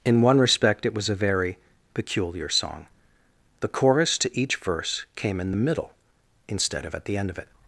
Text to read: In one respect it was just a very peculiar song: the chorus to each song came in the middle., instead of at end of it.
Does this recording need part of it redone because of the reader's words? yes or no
yes